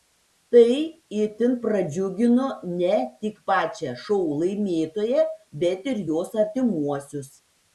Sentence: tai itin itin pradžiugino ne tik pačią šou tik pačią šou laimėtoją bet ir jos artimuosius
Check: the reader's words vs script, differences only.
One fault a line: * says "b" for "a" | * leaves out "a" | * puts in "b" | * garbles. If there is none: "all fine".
* leaves out "itin"
* leaves out "tik pačią šou"